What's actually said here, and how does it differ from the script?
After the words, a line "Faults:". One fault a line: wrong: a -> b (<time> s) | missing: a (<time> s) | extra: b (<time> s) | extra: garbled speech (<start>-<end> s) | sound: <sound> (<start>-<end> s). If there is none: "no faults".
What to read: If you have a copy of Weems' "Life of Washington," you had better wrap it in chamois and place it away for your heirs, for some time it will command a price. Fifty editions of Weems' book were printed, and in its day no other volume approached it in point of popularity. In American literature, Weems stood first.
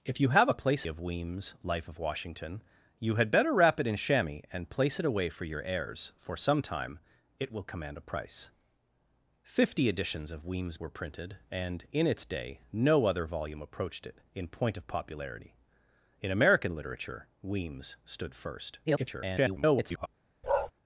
If you have a place of Weems' "Life of Washington," you had better wrap it in chamois and place it away for your heirs, for some time it will command a price. Fifty editions of Weems' were printed, and in its day no other volume approached it in point of popularity. In American literature, Weems stood first. [garbled]
Faults:
wrong: copy -> place (0.6 s)
missing: book (10.8 s)
extra: garbled speech (18.9-20.1 s)
sound: bark (20.4-20.7 s)